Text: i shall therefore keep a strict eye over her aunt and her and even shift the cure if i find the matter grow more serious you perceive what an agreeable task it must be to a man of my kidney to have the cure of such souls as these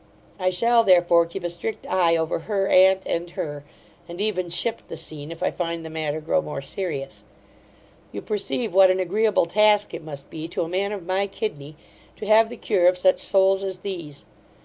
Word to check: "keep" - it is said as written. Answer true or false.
true